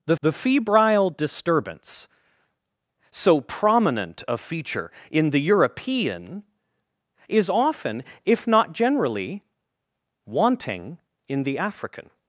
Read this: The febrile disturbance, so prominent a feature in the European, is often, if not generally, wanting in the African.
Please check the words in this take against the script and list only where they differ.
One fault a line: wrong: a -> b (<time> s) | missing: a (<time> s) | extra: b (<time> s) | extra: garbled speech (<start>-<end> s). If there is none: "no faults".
extra: the (0.2 s)